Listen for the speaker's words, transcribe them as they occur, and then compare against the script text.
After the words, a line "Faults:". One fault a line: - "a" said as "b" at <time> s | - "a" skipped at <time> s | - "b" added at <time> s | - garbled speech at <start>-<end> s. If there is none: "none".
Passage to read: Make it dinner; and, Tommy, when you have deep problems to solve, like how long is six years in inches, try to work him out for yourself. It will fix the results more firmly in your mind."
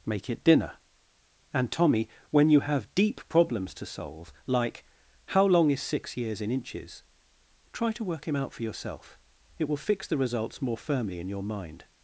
Make it dinner; and, Tommy, when you have deep problems to solve, like how long is six years in inches, try to work him out for yourself. It will fix the results more firmly in your mind."
Faults:
none